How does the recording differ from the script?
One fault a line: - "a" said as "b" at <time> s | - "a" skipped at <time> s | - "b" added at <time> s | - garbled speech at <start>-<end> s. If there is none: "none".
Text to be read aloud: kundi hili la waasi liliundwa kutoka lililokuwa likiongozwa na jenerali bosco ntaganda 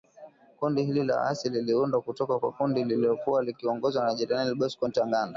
- "kwa kundi" added at 2.4 s